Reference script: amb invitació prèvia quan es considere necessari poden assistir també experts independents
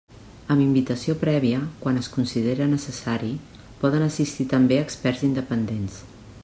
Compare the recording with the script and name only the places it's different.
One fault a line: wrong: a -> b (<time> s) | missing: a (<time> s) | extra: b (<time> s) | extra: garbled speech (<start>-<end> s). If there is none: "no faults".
no faults